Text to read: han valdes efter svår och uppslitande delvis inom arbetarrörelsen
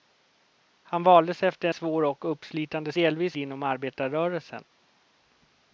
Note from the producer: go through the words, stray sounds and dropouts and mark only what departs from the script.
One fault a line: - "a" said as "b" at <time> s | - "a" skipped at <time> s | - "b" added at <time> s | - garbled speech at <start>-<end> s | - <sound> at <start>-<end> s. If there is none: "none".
none